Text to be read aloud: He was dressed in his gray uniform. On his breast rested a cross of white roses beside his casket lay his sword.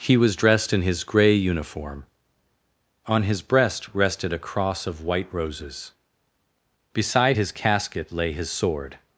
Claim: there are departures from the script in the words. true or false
false